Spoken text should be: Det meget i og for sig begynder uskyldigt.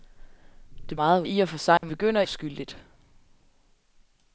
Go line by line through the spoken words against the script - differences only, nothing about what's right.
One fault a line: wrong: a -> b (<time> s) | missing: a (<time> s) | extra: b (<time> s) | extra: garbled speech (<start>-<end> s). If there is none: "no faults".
no faults